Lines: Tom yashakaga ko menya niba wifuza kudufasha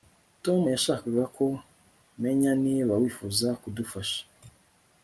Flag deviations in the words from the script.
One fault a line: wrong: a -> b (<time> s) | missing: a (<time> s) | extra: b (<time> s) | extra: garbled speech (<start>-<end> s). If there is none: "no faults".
no faults